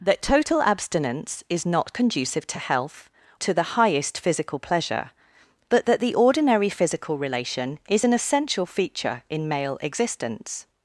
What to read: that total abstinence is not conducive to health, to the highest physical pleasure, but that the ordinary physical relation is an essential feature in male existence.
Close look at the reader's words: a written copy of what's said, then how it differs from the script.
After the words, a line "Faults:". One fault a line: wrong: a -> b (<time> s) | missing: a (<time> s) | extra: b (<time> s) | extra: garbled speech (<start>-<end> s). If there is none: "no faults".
that total abstinence is not conducive to health, to the highest physical pleasure, but that the ordinary physical relation is an essential feature in male existence.
Faults:
no faults